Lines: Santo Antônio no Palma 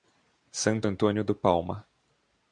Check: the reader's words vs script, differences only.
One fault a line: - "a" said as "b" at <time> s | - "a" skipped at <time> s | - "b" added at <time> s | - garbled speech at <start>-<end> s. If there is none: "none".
- "no" said as "do" at 1.2 s